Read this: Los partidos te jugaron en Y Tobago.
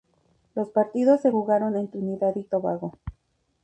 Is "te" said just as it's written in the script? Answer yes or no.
no